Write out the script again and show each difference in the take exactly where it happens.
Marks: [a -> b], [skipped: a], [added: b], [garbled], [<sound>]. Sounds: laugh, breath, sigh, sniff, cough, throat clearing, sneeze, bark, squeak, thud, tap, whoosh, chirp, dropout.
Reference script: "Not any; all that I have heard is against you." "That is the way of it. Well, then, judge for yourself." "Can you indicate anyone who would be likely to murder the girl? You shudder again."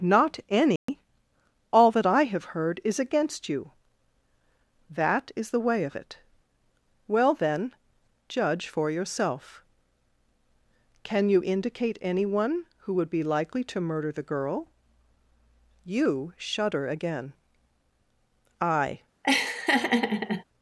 "Not any; [dropout] all that I have heard is against you." "That is the way of it. Well, then, judge for yourself." "Can you indicate anyone who would be likely to murder the girl? You shudder again." [added: I] [laugh]